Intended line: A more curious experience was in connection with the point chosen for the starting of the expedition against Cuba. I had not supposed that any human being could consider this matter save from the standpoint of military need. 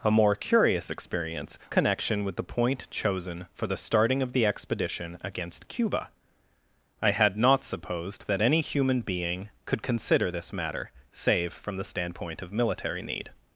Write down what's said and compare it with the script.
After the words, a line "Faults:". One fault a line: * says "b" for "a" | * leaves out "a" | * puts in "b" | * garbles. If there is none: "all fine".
A more curious experience connection with the point chosen for the starting of the expedition against Cuba. I had not supposed that any human being could consider this matter save from the standpoint of military need.
Faults:
* leaves out "was in"